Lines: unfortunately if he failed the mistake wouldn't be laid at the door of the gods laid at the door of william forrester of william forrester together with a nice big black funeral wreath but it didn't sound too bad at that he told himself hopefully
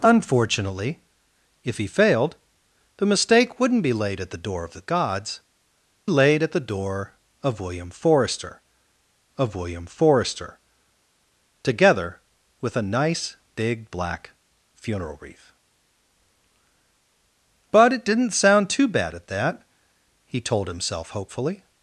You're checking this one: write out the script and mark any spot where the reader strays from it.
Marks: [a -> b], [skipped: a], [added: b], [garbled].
unfortunately if he failed the mistake wouldn't be laid at the door of the gods laid at the door of william forrester of william forrester together with a nice big black funeral wreath but it didn't sound too bad at that he told himself hopefully